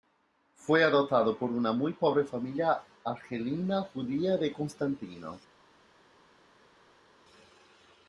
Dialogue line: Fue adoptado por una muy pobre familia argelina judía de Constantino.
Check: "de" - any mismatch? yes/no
no